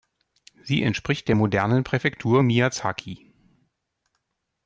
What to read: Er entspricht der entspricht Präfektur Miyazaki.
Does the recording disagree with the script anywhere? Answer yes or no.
yes